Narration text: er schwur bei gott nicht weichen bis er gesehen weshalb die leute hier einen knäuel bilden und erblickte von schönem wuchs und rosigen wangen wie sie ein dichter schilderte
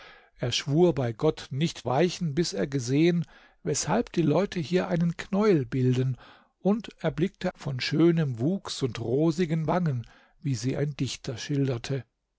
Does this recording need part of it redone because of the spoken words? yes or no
no